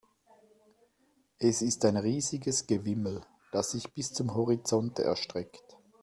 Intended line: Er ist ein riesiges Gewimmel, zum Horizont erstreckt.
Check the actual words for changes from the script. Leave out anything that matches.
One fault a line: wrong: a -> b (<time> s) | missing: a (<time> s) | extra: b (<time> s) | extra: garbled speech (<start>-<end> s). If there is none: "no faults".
wrong: Er -> Es (1.4 s)
extra: das sich bis (3.5 s)